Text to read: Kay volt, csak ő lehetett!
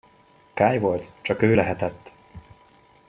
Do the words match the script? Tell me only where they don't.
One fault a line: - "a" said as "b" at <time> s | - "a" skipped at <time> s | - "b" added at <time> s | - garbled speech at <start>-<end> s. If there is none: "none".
none